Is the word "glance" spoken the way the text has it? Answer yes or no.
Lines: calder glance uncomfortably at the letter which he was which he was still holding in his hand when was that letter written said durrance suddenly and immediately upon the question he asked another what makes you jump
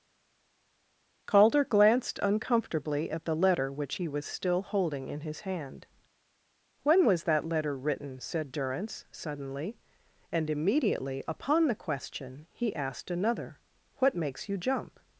no